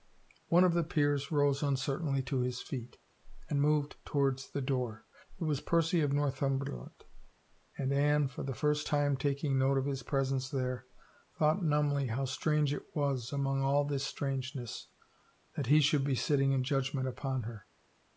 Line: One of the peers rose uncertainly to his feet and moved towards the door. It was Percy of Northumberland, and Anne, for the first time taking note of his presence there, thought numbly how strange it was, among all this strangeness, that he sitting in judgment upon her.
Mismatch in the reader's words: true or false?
true